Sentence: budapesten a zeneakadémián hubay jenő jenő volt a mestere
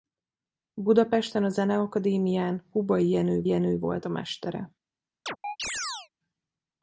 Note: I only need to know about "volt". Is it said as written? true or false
true